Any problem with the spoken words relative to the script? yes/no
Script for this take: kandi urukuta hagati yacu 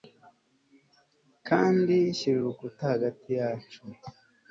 yes